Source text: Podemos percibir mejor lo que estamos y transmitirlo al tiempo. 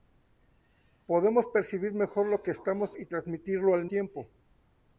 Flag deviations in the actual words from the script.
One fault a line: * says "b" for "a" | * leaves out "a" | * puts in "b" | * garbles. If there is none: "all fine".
all fine